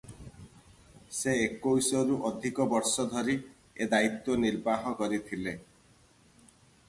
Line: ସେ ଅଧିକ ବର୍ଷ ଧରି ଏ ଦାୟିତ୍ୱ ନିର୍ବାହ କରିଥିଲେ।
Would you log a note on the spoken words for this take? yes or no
yes